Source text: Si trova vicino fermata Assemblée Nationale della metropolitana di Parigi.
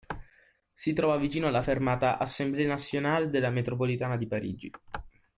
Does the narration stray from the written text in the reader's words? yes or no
yes